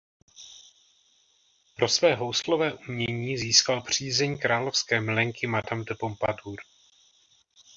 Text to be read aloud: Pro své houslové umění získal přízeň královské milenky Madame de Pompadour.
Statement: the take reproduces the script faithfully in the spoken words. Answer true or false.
true